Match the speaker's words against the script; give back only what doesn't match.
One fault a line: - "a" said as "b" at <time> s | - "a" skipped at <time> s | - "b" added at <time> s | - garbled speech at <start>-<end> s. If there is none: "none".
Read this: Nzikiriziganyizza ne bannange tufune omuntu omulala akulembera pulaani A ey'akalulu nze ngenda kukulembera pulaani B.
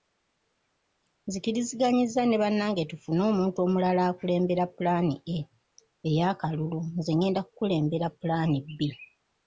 none